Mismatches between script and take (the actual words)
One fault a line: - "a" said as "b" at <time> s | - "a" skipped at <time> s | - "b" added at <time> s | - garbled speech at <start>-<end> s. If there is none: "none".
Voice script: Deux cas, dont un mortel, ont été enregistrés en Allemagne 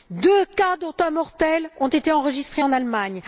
none